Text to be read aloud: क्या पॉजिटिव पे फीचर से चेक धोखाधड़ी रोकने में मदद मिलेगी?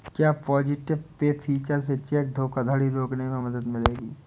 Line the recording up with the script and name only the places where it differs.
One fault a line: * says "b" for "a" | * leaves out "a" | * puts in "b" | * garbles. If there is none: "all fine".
all fine